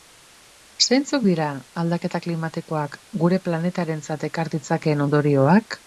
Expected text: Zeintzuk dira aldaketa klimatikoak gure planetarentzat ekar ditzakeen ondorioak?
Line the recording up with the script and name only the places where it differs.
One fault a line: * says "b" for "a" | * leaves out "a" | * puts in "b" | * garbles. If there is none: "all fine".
all fine